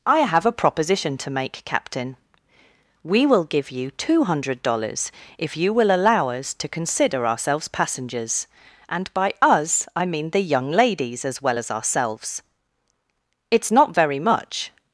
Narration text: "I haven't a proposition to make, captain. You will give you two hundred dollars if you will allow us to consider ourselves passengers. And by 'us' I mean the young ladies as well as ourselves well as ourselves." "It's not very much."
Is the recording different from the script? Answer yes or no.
yes